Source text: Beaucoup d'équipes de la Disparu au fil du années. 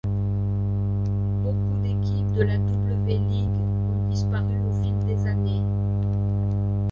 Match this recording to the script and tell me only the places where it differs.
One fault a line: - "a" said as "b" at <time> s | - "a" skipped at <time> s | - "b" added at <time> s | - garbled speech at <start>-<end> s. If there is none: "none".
- "W League ont" added at 2.6 s
- "du" said as "des" at 5.1 s